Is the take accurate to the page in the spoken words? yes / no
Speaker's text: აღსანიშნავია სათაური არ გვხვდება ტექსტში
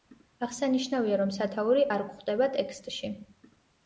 no